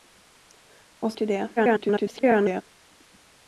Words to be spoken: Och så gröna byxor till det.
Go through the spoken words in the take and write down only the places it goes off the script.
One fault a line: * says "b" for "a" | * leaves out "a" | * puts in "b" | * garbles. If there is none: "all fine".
* leaves out "så gröna byxor"
* garbles